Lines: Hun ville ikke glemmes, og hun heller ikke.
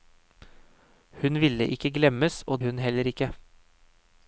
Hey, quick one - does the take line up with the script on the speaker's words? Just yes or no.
yes